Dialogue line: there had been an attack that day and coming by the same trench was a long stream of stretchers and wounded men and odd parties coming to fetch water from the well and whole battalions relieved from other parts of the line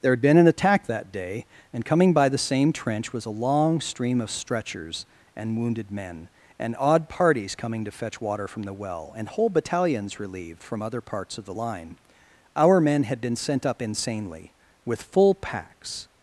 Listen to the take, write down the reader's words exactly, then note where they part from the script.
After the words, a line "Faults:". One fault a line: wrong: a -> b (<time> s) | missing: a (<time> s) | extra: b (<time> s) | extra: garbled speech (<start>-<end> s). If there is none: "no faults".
there had been an attack that day and coming by the same trench was a long stream of stretchers and wounded men and odd parties coming to fetch water from the well and whole battalions relieved from other parts of the line our men had been sent up insanely with full packs
Faults:
extra: our men had been sent up insanely with full packs (12.5 s)